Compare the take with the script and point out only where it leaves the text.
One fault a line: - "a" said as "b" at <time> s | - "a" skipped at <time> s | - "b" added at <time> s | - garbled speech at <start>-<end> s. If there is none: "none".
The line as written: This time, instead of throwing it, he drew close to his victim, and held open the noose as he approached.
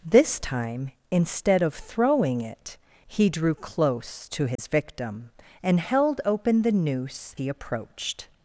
- "as" skipped at 7.3 s